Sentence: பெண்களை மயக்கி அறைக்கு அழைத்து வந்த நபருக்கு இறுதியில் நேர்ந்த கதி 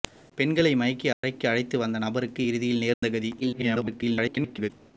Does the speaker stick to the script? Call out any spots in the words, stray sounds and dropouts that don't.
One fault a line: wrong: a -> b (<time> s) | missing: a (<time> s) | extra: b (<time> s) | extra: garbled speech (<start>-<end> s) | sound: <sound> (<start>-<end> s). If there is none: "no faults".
sound: dropout (1.1-1.2 s)
sound: dropout (2.9-3.0 s)
extra: garbled speech (3.4-4.7 s)